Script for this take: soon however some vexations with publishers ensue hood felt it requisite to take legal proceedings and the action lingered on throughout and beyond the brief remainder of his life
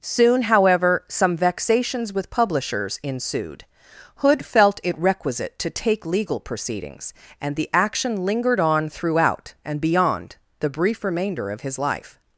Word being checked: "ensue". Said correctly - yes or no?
no